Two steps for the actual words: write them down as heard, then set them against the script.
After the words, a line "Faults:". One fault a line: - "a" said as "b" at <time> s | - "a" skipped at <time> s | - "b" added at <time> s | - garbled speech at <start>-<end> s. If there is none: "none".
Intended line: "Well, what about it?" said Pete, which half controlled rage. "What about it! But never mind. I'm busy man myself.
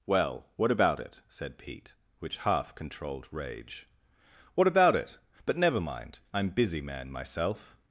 "Well, what about it?" said Pete, which half controlled rage. "What about it! But never mind. I'm busy man myself.
Faults:
none